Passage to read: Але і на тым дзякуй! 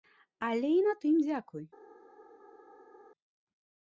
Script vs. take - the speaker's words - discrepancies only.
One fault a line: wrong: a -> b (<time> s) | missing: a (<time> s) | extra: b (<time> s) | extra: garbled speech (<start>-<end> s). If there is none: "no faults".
no faults